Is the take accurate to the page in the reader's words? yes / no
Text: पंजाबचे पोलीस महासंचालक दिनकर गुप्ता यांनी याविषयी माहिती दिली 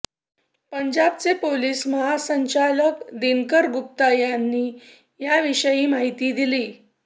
yes